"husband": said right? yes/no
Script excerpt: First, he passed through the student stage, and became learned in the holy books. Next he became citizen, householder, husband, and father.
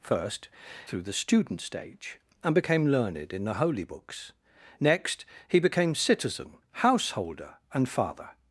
no